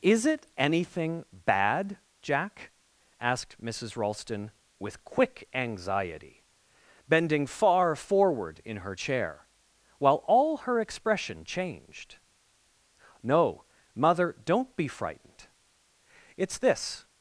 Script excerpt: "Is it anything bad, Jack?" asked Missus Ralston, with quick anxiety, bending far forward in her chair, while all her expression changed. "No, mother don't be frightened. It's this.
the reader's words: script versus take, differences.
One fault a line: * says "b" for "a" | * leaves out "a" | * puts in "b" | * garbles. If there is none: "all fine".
all fine